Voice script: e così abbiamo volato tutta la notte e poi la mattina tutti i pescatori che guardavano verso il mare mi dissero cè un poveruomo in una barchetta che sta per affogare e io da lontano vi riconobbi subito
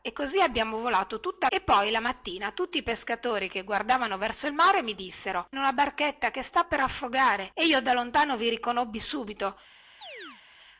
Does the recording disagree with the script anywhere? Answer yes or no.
yes